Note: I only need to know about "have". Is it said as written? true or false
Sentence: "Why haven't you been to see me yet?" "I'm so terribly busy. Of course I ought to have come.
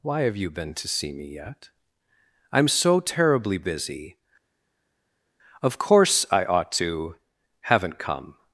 false